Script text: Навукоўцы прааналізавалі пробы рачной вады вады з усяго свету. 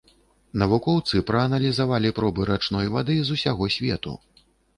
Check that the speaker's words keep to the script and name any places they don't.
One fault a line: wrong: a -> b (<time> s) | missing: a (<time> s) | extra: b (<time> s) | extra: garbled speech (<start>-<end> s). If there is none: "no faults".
missing: вады (3.2 s)